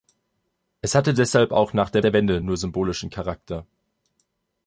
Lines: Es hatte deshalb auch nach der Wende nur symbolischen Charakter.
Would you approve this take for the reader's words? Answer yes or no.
no